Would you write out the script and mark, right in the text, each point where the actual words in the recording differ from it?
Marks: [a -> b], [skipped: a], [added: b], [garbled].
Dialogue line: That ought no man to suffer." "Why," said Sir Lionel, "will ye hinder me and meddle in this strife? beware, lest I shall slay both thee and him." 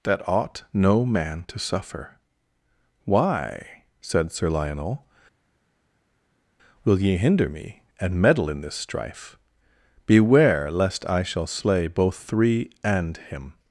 That ought no man to suffer." "Why," said Sir Lionel, "will ye hinder me and meddle in this strife? beware, lest I shall slay both [thee -> three] and him."